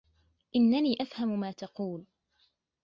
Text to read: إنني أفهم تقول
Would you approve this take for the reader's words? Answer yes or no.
no